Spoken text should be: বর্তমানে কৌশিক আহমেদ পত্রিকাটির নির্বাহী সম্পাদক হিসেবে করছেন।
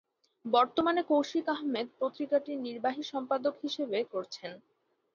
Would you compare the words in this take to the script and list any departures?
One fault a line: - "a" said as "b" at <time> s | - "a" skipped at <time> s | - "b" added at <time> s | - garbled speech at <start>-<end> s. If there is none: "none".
none